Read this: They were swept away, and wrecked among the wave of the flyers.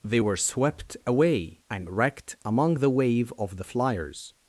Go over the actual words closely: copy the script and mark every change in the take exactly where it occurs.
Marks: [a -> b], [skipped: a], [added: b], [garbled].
They were swept away, and wrecked among the wave of the flyers.